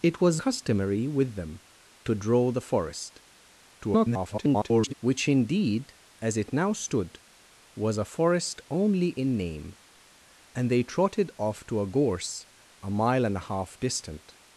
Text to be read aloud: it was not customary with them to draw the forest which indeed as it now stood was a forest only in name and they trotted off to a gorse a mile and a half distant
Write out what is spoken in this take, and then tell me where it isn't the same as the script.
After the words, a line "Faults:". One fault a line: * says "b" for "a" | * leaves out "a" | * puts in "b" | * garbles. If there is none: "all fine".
it was customary with them to draw the forest [garbled] which indeed as it now stood was a forest only in name and they trotted off to a gorse a mile and a half distant
Faults:
* leaves out "not"
* garbles